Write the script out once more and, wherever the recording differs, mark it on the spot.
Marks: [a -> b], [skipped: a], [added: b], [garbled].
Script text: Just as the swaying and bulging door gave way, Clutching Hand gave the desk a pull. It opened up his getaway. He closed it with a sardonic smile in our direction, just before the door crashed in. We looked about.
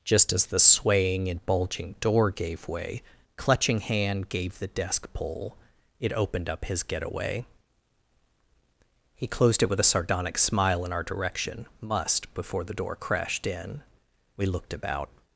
Just as the swaying and bulging door gave way, Clutching Hand gave the desk [skipped: a] pull. It opened up his getaway. He closed it with a sardonic smile in our direction, [just -> must] before the door crashed in. We looked about.